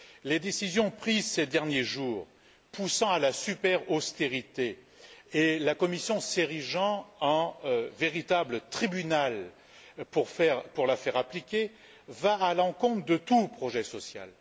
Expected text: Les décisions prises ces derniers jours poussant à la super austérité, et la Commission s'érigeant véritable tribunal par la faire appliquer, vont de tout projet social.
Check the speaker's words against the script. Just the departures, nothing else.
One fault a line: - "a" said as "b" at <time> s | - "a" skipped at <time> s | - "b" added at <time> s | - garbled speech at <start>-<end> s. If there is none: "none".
- "en" added at 7.2 s
- "par" said as "pour" at 10.1 s
- "à l'encontre" added at 12.4 s